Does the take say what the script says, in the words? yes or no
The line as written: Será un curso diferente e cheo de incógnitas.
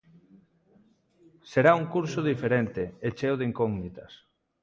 yes